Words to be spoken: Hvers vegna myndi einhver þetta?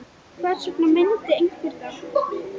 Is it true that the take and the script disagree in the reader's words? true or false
false